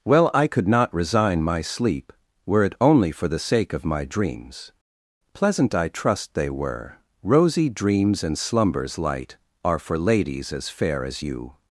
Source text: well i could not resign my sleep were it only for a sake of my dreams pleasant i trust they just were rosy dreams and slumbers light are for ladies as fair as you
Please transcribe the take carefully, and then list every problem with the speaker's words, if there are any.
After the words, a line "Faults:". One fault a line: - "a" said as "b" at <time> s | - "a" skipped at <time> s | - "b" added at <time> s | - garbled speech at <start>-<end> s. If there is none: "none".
well i could not resign my sleep were it only for the sake of my dreams pleasant i trust they were rosy dreams and slumbers light are for ladies as fair as you
Faults:
- "a" said as "the" at 3.3 s
- "just" skipped at 6.5 s